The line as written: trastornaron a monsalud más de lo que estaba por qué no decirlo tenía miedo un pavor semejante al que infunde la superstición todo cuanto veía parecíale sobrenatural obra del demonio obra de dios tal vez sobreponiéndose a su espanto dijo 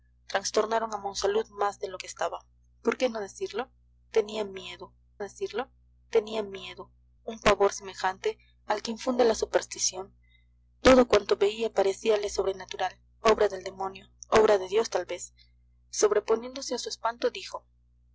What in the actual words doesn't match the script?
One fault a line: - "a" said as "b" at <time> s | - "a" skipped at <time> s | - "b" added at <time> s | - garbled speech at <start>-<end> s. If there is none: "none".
- "decirlo tenía miedo" added at 5.2 s